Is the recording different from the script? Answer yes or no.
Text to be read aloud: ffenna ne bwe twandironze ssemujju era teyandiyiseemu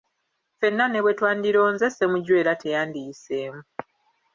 no